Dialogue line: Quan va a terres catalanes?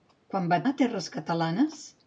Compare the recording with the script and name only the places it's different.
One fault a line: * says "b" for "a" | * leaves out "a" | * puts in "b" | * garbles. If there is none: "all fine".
all fine